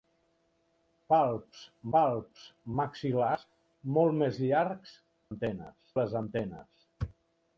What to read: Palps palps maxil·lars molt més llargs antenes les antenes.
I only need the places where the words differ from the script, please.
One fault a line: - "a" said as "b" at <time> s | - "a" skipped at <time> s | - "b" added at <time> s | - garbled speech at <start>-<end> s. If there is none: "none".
none